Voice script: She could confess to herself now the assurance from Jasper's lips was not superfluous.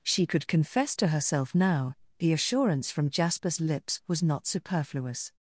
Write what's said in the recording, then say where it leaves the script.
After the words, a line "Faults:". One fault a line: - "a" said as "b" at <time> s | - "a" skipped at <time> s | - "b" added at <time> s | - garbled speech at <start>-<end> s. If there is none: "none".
She could confess to herself now the assurance from Jasper's lips was not superfluous.
Faults:
none